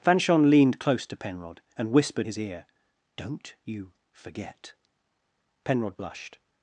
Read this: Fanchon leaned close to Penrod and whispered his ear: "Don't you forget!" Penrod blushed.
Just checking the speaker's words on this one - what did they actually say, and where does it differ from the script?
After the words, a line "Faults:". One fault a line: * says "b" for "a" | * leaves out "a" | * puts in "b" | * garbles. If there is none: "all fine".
Fanchon leaned close to Penrod and whispered his ear: "Don't you forget!" Penrod blushed.
Faults:
all fine